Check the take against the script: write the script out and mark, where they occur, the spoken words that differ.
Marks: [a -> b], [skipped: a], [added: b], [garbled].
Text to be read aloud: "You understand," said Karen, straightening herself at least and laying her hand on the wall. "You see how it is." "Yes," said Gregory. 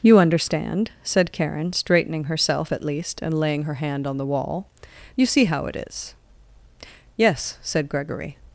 "You understand," said Karen, straightening herself at least and laying her hand on the wall. "You see how it is." "Yes," said Gregory.